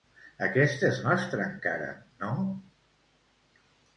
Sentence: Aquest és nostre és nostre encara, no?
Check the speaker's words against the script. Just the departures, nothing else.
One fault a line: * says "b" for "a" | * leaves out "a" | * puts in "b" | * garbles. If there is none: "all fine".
* leaves out "és nostre"